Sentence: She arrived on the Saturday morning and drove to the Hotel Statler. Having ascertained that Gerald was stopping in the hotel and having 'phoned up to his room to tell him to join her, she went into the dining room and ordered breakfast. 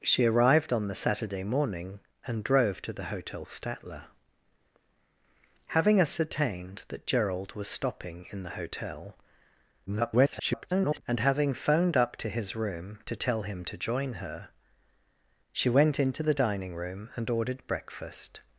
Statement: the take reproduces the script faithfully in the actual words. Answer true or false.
false